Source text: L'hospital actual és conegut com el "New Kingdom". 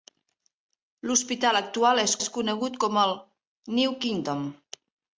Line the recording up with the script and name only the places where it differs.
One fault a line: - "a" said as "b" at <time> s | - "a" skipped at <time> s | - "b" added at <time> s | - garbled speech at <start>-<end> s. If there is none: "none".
- "és" added at 2.2 s